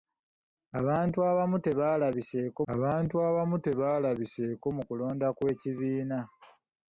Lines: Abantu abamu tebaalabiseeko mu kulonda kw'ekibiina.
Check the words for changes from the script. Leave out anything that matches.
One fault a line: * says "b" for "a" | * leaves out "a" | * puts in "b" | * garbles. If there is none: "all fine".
* puts in "abantu abamu tebaalabiseeko"